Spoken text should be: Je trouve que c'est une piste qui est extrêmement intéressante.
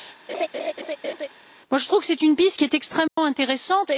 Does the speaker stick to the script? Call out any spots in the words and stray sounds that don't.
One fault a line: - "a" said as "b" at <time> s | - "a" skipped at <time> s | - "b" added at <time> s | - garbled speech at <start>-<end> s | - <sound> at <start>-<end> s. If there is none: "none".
- laugh at 0.3-1.3 s
- dropout at 3.1-3.2 s